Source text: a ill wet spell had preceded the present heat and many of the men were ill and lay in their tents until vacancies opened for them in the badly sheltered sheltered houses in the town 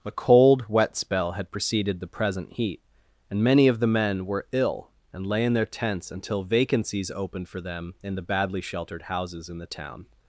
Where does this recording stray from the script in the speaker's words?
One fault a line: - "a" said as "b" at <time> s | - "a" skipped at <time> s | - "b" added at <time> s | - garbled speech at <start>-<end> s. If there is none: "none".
- "ill" said as "cold" at 0.1 s
- "sheltered" skipped at 9.0 s